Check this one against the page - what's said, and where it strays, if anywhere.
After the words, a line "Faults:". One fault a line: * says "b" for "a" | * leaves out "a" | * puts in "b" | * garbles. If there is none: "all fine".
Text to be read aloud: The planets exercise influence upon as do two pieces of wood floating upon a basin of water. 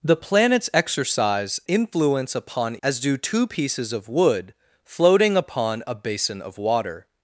The planets exercise influence upon as do two pieces of wood floating upon a basin of water.
Faults:
all fine